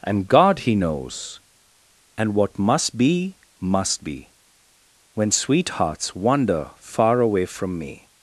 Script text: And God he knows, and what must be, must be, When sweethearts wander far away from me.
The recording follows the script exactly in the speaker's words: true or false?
true